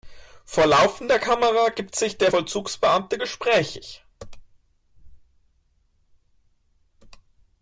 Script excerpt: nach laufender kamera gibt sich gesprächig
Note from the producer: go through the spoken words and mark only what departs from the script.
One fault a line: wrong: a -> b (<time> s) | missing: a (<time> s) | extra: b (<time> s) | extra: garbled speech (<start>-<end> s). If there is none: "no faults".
wrong: nach -> vor (0.5 s)
extra: der vollzugsbeamte (2.2 s)